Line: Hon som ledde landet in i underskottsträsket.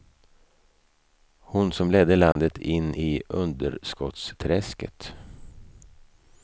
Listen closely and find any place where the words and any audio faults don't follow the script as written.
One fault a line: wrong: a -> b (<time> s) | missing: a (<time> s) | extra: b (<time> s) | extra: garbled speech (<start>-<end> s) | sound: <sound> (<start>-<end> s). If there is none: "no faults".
sound: dropout (2.3-2.4 s)